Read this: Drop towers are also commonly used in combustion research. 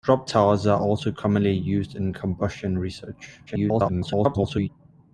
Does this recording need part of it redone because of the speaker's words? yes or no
yes